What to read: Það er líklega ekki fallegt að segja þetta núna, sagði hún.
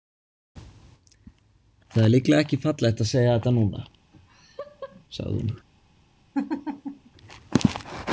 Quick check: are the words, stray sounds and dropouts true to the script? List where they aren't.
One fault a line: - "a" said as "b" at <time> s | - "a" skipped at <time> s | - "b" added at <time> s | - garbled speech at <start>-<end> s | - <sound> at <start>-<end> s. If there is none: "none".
- laugh at 4.1-5.0 s
- laugh at 6.3-7.1 s